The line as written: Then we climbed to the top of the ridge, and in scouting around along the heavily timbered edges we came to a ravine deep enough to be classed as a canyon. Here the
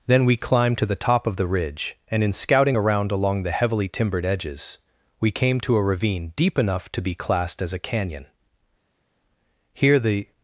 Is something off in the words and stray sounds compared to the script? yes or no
no